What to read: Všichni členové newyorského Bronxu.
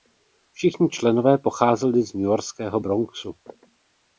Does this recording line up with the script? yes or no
no